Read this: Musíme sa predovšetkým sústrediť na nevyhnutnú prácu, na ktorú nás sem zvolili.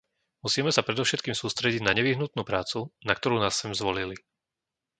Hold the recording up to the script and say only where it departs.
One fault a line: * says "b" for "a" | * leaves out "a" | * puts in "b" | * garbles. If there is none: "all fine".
all fine